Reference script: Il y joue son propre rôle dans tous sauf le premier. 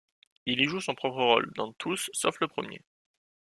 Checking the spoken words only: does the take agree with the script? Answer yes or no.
yes